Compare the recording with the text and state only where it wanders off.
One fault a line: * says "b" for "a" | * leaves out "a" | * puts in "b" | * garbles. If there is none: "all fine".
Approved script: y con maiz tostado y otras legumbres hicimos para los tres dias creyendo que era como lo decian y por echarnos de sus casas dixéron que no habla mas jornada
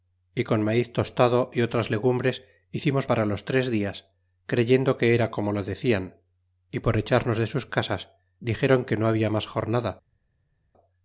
all fine